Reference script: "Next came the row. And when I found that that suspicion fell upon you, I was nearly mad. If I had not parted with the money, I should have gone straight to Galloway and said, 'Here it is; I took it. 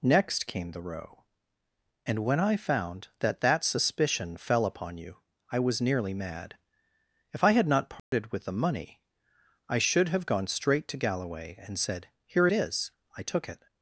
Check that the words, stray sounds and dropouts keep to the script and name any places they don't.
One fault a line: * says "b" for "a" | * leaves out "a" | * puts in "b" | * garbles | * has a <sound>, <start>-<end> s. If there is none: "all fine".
* has a dropout, 8.0-8.1 s